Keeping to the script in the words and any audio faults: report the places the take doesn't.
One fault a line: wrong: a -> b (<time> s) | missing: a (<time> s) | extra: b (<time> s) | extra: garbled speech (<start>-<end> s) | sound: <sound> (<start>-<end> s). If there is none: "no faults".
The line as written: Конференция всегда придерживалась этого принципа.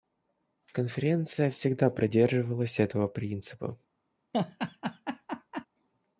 sound: laugh (4.3-5.7 s)